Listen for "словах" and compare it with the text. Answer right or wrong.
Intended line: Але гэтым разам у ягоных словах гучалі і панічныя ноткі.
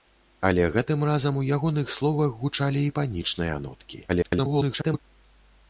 right